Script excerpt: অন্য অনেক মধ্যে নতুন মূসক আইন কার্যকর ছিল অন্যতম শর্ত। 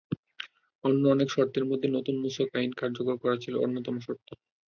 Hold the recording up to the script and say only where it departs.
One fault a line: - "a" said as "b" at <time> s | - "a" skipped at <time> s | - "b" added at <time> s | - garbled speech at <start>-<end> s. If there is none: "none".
- "শর্তের" added at 1.3 s
- "করা" added at 3.2 s